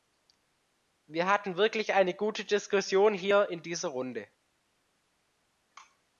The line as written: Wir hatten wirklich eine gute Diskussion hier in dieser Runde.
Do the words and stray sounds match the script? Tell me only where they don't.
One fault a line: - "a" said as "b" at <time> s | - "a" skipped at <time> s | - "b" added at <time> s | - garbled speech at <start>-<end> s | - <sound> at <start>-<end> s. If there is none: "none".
none